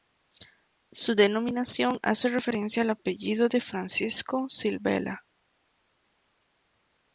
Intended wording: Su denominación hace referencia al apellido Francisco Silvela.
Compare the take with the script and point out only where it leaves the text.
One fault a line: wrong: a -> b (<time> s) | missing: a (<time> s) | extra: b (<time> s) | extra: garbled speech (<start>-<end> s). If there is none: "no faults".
extra: de (3.5 s)